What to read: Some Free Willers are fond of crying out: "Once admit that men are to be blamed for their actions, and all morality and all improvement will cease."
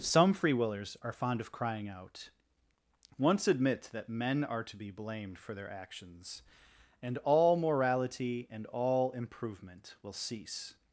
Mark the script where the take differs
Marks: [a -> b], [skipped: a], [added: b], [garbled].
Some Free Willers are fond of crying out: "Once admit that men are to be blamed for their actions, and all morality and all improvement will cease."